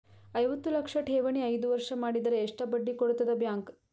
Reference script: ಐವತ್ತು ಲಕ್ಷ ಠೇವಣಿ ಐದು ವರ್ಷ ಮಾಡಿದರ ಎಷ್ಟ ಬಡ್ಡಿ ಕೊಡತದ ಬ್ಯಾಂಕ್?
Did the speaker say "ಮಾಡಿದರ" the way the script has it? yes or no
yes